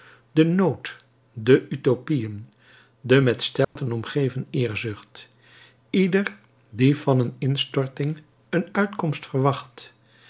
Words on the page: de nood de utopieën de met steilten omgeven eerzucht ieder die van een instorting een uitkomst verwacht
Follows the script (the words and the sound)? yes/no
no